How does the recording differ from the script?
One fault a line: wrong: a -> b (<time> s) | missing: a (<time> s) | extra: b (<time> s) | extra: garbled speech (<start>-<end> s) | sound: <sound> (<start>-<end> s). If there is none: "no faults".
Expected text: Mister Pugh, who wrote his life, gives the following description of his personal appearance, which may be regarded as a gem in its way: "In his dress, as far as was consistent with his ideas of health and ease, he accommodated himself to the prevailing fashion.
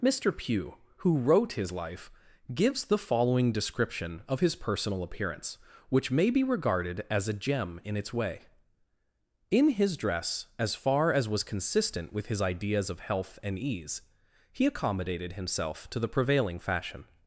no faults